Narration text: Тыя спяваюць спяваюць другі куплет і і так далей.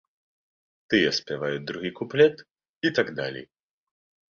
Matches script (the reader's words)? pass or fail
fail